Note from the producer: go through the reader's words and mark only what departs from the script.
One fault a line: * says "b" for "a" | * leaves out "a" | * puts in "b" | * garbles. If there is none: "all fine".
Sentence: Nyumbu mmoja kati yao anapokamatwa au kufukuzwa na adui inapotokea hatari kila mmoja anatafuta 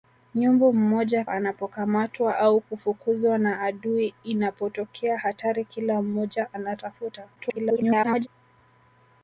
* leaves out "kati yao"
* garbles